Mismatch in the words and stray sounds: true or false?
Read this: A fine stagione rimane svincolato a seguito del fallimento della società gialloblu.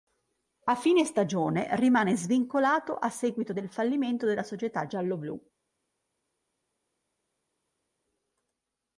false